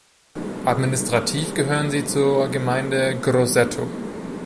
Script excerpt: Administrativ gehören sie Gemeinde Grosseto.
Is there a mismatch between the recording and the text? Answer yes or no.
yes